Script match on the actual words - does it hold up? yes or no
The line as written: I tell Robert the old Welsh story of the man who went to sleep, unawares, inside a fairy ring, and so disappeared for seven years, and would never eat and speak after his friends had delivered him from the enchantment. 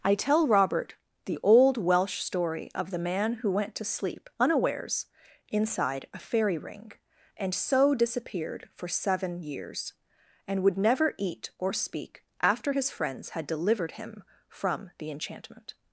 no